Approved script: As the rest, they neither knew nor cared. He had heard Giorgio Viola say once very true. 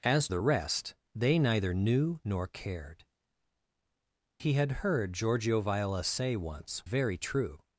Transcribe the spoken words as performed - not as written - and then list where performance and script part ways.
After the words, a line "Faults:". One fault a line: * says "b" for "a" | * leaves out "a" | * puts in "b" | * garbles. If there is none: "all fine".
As the rest, they neither knew nor cared. He had heard Giorgio Viola say once very true.
Faults:
all fine